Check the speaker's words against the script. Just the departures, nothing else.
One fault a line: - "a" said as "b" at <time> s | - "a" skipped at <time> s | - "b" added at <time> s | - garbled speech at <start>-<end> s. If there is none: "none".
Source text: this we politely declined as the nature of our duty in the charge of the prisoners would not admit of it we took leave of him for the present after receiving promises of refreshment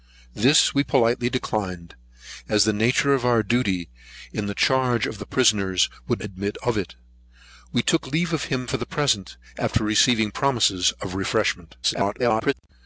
- "not" skipped at 6.2 s
- garbled speech at 11.8-12.5 s